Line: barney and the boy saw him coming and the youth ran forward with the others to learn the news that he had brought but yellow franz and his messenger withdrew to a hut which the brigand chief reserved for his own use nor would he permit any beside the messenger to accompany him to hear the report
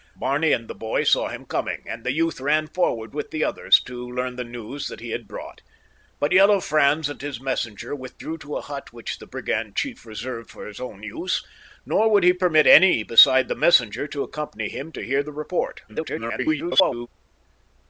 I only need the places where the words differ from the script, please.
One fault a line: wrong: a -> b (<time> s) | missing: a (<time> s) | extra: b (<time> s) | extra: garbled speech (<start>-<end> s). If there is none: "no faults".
extra: garbled speech (15.9-17.1 s)